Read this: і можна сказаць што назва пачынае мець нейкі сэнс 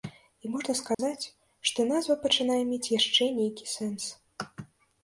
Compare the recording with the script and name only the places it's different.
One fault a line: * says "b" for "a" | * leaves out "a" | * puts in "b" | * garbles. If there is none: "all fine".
* puts in "яшчэ"